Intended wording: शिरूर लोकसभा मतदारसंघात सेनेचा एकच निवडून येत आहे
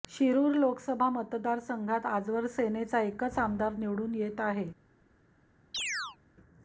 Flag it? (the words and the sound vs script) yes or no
yes